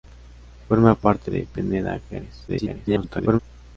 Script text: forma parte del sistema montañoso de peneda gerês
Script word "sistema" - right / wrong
wrong